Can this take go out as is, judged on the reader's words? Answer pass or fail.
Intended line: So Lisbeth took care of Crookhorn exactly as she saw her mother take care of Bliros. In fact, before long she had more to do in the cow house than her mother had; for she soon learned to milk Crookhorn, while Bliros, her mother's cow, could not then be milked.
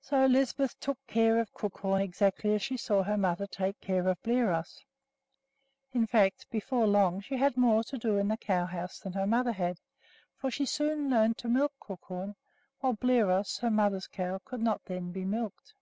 pass